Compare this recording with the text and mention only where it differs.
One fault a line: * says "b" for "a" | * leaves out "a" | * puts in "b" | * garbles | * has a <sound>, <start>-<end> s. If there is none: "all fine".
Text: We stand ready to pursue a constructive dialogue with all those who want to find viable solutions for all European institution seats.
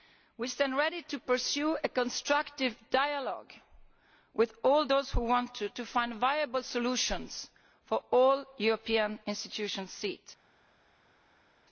all fine